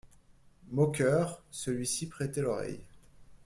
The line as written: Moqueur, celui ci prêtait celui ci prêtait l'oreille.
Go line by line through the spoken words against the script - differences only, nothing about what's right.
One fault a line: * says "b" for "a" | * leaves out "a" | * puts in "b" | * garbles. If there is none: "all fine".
* leaves out "celui ci prêtait"